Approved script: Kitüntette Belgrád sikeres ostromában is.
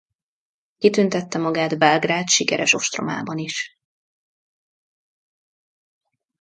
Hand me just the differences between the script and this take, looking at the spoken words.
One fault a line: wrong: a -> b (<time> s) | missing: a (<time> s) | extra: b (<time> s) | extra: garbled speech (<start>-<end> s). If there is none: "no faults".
extra: magát (1.4 s)